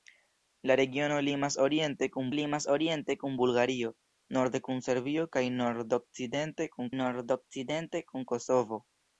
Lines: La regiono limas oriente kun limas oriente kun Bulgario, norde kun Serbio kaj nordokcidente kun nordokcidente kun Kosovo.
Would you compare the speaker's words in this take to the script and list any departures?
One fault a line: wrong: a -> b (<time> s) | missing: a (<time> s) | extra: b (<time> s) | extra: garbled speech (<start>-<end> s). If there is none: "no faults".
no faults